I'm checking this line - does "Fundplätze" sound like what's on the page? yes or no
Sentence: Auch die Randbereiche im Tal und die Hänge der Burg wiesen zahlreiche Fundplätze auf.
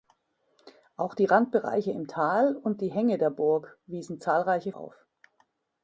no